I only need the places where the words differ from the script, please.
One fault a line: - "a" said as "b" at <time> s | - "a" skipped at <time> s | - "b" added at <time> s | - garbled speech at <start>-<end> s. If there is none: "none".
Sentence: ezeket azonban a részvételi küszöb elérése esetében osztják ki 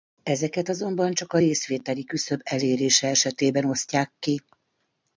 - "csak" added at 1.1 s